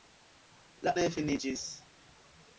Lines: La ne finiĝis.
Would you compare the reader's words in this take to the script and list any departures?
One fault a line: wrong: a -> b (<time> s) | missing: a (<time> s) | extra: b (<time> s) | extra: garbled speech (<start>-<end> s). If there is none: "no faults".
no faults